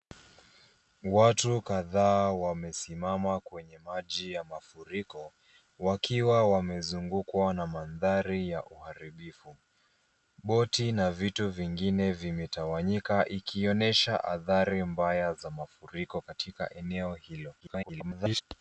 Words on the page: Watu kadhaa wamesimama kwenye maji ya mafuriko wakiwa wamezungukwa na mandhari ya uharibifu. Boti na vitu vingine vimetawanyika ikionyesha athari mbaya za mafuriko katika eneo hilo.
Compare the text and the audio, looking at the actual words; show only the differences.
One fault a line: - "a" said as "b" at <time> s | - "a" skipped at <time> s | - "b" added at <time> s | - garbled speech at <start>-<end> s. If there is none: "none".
- garbled speech at 17.6-18.4 s